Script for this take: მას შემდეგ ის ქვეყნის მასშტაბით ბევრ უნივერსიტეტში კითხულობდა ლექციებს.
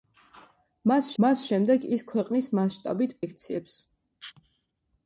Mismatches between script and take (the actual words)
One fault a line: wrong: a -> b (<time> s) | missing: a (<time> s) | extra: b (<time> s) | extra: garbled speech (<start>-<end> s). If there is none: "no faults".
extra: მას (1.2 s)
missing: ბევრ უნივერსიტეტში კითხულობდა (3.1 s)